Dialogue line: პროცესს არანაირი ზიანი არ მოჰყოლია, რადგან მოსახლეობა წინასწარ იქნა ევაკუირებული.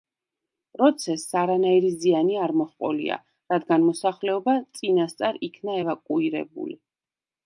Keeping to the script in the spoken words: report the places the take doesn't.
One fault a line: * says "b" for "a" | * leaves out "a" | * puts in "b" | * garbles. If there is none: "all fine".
all fine